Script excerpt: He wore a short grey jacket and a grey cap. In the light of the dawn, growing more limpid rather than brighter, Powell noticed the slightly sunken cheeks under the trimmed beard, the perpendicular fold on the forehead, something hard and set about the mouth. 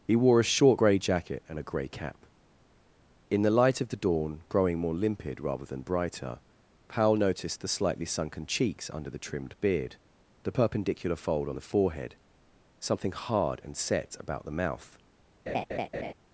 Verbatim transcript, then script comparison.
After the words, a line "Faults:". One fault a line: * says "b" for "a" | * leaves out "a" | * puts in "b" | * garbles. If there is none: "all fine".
He wore a short grey jacket and a grey cap. In the light of the dawn, growing more limpid rather than brighter, Powell noticed the slightly sunken cheeks under the trimmed beard, the perpendicular fold on the forehead, something hard and set about the mouth.
Faults:
all fine